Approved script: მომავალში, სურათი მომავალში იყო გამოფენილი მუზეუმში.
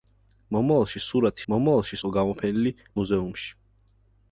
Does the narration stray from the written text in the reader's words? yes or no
no